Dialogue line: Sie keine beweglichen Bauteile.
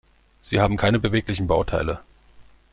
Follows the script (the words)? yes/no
no